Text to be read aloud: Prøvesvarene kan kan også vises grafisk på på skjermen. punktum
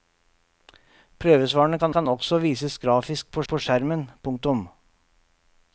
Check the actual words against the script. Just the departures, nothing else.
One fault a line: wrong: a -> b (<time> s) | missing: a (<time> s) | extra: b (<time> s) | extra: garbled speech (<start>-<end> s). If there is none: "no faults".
no faults